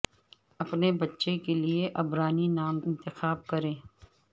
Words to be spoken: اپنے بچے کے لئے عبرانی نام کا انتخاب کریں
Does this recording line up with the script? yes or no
no